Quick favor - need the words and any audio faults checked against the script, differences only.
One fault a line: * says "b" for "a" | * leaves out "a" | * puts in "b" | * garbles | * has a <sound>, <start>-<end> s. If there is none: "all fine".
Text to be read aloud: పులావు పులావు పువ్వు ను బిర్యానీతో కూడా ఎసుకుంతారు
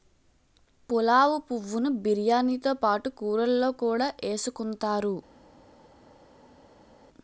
* leaves out "పులావు"
* puts in "పాటు కూరల్లో"